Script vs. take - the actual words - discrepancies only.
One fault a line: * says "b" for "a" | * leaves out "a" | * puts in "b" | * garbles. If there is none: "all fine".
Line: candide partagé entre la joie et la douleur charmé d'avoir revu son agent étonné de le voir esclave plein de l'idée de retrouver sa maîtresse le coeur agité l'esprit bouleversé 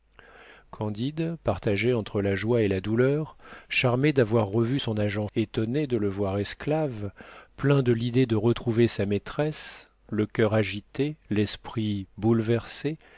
all fine